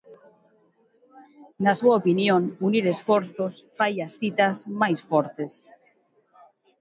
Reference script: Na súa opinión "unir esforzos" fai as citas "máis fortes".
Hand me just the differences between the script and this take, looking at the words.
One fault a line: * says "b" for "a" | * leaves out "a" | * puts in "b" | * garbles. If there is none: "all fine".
all fine